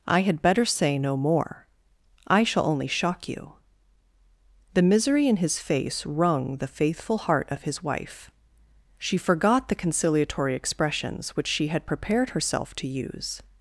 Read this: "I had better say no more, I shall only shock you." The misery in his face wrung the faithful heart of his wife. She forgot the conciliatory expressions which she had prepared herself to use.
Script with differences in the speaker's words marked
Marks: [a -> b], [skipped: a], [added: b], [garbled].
"I had better say no more, I shall only shock you." The misery in his face wrung the faithful heart of his wife. She forgot the conciliatory expressions which she had prepared herself to use.